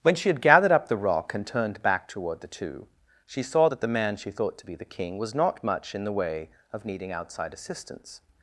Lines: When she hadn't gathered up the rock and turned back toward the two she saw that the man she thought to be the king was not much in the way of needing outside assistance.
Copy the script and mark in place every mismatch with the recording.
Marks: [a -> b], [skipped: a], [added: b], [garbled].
When she [hadn't -> had] gathered up the rock and turned back toward the two she saw that the man she thought to be the king was not much in the way of needing outside assistance.